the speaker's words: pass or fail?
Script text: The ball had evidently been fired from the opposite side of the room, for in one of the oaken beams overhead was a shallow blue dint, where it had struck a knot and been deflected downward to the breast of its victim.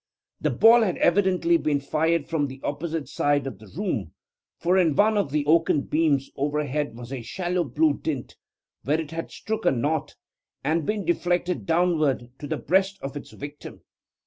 pass